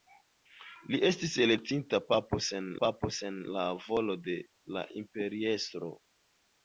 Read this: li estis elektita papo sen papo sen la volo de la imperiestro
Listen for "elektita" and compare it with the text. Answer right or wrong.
right